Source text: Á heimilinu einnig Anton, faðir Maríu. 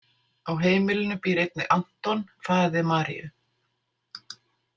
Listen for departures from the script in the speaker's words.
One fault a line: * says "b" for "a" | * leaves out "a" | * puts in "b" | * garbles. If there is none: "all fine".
* puts in "býr"